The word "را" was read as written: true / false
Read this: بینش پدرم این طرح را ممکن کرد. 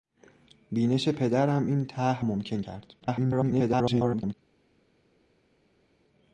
false